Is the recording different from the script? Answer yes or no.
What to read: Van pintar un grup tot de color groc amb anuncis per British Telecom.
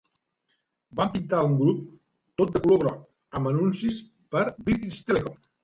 no